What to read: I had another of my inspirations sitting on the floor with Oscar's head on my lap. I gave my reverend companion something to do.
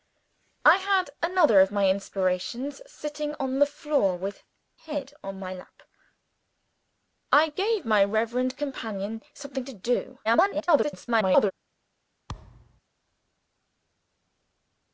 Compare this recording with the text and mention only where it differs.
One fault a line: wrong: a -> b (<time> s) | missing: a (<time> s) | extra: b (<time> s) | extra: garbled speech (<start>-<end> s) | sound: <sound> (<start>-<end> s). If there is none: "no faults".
missing: Oscar's (4.4 s)
extra: garbled speech (10.2-11.5 s)
sound: thud (12.3-12.8 s)